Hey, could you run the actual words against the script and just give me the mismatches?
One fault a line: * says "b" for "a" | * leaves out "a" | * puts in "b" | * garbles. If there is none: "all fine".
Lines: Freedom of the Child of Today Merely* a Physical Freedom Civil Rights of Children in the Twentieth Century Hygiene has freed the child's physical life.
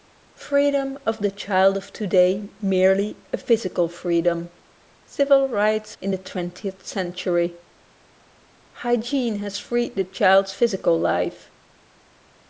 * leaves out "of Children"